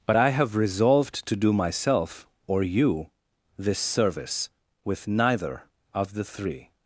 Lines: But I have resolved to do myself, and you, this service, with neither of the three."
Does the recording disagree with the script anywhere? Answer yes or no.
yes